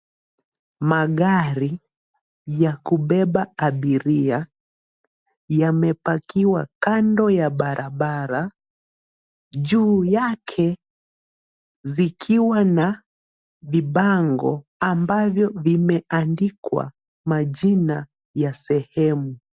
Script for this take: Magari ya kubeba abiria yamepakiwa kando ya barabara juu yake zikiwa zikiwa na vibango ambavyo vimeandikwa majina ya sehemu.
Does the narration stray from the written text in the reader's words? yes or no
yes